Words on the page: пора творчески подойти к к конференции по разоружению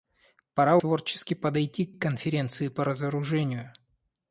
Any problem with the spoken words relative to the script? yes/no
no